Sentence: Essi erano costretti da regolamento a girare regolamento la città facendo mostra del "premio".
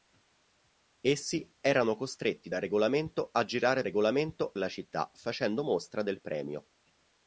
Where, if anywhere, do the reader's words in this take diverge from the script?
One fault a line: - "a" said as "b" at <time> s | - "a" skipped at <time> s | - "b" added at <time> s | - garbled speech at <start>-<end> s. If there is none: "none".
none